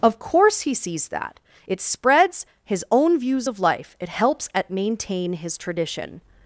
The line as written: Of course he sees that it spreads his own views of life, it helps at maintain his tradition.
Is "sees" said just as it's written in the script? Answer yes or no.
yes